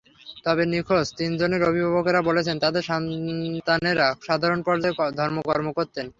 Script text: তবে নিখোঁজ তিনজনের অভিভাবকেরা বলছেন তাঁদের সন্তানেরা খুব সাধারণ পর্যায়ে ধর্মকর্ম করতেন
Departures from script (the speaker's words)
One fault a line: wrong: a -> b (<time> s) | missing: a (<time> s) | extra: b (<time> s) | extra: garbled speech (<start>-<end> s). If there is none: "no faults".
missing: খুব (4.1 s)